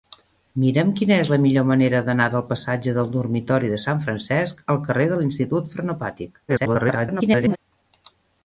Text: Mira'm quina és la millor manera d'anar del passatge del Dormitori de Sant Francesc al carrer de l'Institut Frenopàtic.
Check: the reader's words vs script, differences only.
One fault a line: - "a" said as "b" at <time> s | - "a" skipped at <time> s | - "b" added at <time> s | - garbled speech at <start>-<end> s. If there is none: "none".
- garbled speech at 6.5-7.6 s